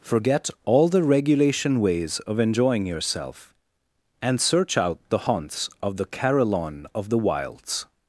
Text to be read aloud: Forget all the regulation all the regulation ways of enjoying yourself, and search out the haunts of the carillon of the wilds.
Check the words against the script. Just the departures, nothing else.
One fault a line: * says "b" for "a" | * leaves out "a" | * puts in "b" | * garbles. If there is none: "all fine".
* leaves out "all the regulation"